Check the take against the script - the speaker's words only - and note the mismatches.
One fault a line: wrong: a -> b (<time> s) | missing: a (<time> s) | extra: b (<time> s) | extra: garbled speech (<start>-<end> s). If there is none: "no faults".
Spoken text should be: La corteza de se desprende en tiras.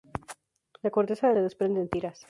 no faults